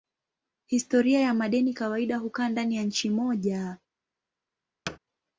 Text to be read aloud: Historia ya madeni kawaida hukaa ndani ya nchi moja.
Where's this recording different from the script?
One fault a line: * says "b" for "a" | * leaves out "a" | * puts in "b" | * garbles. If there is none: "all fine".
all fine